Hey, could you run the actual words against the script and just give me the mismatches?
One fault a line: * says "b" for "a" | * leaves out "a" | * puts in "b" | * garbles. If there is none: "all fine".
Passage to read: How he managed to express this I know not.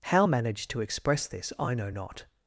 * leaves out "he"